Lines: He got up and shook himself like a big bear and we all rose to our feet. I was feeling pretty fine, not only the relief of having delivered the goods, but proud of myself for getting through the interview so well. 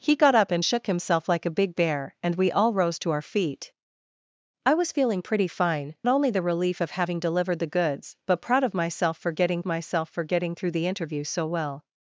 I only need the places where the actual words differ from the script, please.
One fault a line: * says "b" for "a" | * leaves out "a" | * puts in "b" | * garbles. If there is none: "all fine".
* leaves out "not"
* puts in "myself for getting"